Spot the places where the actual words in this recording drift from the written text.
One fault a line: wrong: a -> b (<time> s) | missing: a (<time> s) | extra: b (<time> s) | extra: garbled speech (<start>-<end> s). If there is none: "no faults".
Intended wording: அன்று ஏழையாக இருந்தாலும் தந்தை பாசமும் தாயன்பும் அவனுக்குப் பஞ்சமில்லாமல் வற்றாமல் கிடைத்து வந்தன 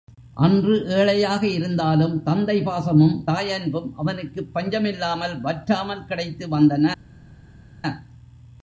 no faults